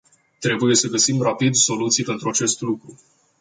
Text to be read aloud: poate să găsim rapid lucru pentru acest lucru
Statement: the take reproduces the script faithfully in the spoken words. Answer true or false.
false